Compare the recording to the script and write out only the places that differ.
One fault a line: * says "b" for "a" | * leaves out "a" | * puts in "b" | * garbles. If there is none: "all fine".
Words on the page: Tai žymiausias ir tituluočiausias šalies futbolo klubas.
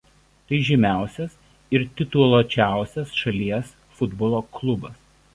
all fine